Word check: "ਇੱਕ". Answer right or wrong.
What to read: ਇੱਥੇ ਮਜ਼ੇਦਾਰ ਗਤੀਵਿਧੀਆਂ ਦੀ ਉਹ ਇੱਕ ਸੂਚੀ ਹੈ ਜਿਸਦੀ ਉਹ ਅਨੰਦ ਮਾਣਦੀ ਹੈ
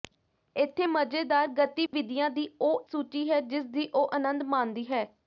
wrong